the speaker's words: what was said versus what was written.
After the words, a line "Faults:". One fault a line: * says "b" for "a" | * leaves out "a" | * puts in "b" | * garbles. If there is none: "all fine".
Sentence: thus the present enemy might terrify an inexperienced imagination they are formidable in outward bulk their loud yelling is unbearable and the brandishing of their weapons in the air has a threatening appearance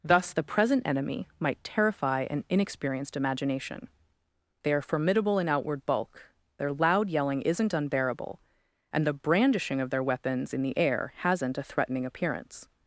thus the present enemy might terrify an inexperienced imagination they are formidable in outward bulk their loud yelling isn't unbearable and the brandishing of their weapons in the air hasn't a threatening appearance
Faults:
* says "isn't" for "is"
* says "hasn't" for "has"